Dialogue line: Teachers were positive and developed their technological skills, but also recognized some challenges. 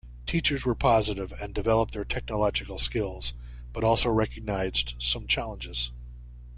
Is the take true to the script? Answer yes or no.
yes